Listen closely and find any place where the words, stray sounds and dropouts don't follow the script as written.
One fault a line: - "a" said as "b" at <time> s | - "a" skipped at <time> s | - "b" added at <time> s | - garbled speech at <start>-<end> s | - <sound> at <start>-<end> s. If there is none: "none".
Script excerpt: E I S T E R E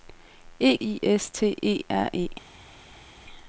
none